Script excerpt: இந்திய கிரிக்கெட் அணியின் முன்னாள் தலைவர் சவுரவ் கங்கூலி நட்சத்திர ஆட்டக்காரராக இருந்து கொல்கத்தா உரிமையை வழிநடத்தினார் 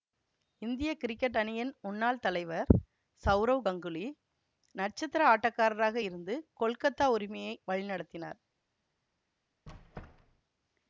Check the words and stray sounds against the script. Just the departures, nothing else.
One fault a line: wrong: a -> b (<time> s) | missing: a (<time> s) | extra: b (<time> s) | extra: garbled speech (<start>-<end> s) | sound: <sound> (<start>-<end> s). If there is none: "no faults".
sound: squeak (9.7-10.4 s)